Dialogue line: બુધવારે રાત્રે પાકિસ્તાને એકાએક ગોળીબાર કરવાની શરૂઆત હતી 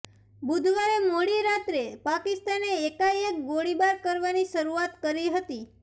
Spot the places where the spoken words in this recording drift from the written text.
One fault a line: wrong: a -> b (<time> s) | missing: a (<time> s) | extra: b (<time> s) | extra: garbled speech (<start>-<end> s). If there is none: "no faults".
extra: મોડી (1.0 s)
extra: કરી (5.0 s)